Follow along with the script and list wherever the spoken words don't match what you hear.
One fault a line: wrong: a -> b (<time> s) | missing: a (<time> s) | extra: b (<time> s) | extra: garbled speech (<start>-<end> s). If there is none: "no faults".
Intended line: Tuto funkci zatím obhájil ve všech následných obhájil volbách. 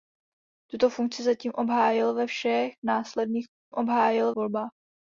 no faults